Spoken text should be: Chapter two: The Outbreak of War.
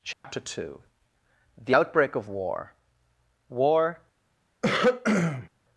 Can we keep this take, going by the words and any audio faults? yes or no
no